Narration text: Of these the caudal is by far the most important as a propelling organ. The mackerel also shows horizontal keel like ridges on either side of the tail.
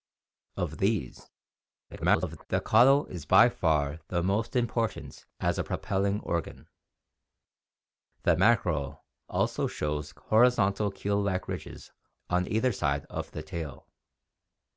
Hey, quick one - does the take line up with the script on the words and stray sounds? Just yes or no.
no